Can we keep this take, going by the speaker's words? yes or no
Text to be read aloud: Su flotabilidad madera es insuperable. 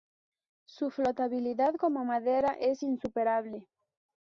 no